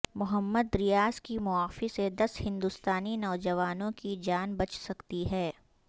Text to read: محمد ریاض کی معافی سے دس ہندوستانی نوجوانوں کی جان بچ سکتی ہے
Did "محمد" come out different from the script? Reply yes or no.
no